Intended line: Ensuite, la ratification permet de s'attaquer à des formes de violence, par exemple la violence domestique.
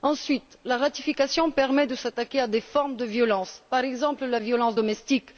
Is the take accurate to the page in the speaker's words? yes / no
yes